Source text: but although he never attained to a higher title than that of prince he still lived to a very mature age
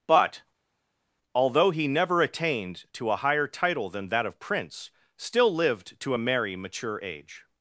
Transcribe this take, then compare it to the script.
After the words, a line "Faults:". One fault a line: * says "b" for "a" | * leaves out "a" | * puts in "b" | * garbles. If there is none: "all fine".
but although he never attained to a higher title than that of prince still lived to a merry mature age
Faults:
* leaves out "he"
* says "merry" for "very"